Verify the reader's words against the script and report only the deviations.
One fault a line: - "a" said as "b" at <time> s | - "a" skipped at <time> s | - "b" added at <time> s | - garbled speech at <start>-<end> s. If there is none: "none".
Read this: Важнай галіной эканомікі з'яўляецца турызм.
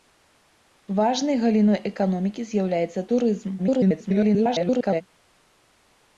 - garbled speech at 3.6-5.0 s